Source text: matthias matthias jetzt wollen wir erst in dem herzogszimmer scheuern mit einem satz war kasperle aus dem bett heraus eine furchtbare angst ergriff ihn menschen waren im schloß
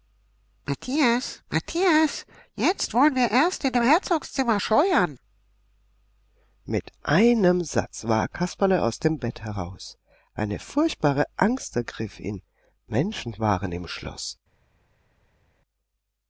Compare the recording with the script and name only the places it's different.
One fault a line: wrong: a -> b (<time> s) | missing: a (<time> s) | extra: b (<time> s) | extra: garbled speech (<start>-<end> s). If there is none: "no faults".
no faults